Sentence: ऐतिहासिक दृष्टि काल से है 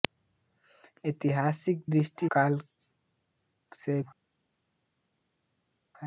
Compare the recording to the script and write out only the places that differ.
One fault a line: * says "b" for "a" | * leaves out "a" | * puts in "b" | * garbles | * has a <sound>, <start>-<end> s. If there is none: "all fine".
all fine